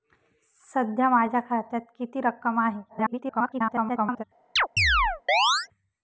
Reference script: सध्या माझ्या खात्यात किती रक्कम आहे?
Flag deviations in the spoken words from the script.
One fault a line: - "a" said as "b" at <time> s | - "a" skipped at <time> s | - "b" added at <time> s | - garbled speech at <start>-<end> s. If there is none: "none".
- garbled speech at 2.9-4.2 s